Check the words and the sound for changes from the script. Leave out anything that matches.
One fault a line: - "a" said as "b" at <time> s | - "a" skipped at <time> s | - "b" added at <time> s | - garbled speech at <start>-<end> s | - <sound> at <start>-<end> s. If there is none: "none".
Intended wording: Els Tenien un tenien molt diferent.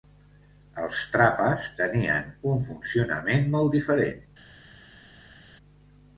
- "Trapas" added at 1.1 s
- "tenien" said as "funcionament" at 2.7 s